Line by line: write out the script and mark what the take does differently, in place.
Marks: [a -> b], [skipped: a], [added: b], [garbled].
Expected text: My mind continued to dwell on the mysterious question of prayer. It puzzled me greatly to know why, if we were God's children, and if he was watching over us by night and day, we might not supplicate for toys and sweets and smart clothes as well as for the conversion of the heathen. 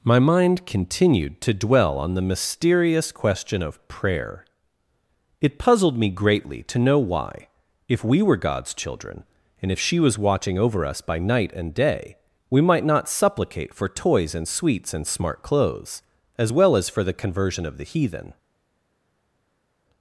My mind continued to dwell on the mysterious question of prayer. It puzzled me greatly to know why, if we were God's children, and if [he -> she] was watching over us by night and day, we might not supplicate for toys and sweets and smart clothes as well as for the conversion of the heathen.